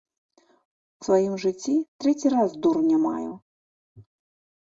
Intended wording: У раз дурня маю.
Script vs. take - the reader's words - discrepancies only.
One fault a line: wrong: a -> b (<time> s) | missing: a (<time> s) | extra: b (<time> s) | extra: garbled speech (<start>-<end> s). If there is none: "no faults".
extra: сваім жыцці трэці (1.0 s)